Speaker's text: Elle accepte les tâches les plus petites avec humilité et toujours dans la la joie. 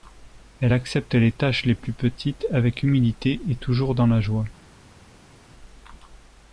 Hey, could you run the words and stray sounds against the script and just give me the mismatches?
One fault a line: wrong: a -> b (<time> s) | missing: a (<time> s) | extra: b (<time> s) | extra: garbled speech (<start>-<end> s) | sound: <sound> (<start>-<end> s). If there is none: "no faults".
missing: la (4.2 s)